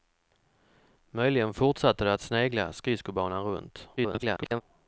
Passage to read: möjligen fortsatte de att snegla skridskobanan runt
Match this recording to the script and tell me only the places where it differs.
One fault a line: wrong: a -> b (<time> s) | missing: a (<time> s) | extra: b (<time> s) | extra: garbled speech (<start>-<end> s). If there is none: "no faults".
extra: garbled speech (4.0-4.6 s)